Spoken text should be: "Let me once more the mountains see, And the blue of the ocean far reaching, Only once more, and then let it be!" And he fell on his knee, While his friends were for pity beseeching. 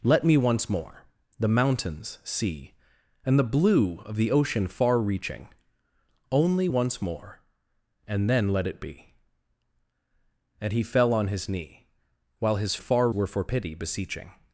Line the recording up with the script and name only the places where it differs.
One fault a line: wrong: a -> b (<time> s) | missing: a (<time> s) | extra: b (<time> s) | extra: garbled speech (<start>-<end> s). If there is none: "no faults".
wrong: friends -> far (12.8 s)